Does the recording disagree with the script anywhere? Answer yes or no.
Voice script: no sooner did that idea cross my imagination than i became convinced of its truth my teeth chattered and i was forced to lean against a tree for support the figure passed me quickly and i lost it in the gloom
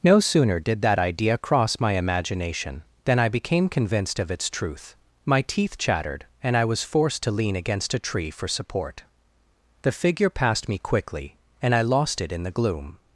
no